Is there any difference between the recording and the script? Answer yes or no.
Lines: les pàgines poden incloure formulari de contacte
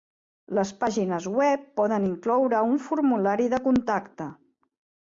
yes